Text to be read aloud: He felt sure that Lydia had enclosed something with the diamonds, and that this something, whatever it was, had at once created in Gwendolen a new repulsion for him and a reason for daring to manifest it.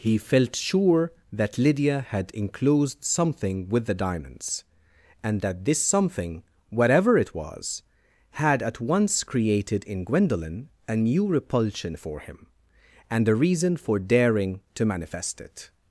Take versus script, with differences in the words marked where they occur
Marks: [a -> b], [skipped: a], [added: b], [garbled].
He felt sure that Lydia had enclosed something with the diamonds, and that this something, whatever it was, had at once created in Gwendolen a new repulsion for him and a reason for daring to manifest it.